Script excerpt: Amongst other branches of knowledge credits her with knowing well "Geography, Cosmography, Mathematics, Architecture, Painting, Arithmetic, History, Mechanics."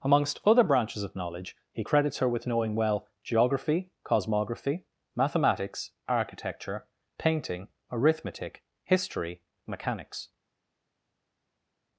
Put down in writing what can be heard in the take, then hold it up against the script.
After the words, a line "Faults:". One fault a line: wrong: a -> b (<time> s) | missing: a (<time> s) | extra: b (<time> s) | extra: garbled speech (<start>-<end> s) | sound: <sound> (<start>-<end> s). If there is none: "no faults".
Amongst other branches of knowledge he credits her with knowing well "Geography, Cosmography, Mathematics, Architecture, Painting, Arithmetic, History, Mechanics."
Faults:
extra: he (1.7 s)